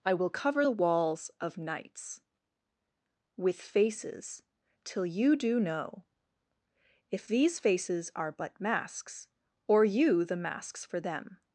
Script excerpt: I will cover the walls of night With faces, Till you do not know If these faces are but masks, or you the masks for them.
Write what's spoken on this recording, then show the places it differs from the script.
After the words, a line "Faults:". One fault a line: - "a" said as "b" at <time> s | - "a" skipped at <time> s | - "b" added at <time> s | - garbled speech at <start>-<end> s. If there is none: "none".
I will cover the walls of nights With faces, Till you do know If these faces are but masks, or you the masks for them.
Faults:
- "night" said as "nights" at 1.6 s
- "not" skipped at 5.6 s